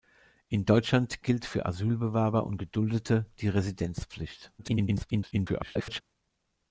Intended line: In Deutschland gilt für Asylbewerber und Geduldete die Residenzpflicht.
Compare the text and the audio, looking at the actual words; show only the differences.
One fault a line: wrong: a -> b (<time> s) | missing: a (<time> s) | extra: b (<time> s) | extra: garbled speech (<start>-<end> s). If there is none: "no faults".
extra: garbled speech (4.6-6.0 s)